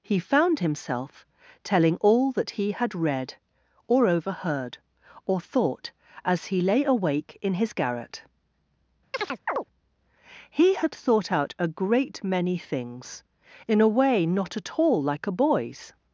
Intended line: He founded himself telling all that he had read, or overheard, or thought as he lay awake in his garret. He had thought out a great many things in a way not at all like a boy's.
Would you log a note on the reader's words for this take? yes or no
yes